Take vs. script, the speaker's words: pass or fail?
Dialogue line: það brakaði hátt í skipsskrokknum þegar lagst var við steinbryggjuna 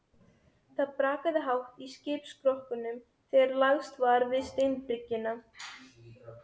pass